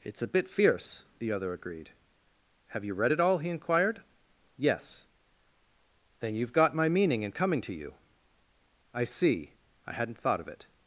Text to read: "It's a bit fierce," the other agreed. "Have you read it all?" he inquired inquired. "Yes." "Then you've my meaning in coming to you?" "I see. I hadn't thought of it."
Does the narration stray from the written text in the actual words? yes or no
yes